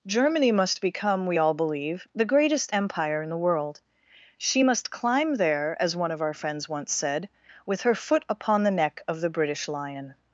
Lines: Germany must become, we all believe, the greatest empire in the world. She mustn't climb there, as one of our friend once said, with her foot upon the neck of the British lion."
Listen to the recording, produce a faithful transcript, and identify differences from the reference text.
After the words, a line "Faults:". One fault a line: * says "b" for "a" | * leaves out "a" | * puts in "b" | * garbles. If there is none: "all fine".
Germany must become, we all believe, the greatest empire in the world. She must climb there, as one of our friends once said, with her foot upon the neck of the British lion."
Faults:
* says "must" for "mustn't"
* says "friends" for "friend"